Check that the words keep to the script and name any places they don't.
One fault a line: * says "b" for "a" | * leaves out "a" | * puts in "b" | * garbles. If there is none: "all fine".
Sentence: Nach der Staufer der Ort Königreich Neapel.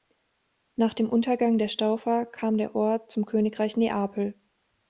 * puts in "dem Untergang"
* puts in "kam"
* puts in "zum"